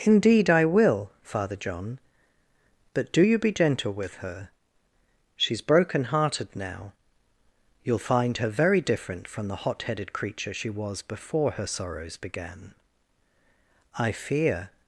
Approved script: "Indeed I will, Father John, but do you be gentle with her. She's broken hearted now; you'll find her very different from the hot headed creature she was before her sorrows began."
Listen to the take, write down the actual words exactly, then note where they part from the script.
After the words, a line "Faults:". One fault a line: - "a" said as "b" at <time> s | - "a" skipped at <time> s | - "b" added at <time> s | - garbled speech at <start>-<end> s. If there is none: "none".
"Indeed I will, Father John, but do you be gentle with her. She's broken hearted now; you'll find her very different from the hot headed creature she was before her sorrows began." "I fear
Faults:
- "I fear" added at 13.9 s